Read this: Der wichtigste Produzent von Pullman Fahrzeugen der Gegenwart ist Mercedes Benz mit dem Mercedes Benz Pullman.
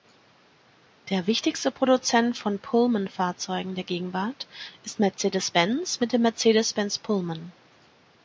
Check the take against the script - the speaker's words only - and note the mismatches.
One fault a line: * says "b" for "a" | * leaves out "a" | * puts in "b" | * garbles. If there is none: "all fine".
all fine